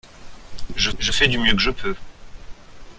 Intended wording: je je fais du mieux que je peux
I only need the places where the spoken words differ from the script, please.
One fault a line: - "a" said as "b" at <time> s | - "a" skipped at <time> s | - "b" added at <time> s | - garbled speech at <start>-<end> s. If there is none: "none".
none